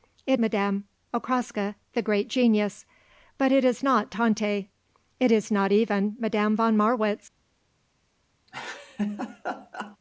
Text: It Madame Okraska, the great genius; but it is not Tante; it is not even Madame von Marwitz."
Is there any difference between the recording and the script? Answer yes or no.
no